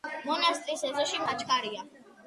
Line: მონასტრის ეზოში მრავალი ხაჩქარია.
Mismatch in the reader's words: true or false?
true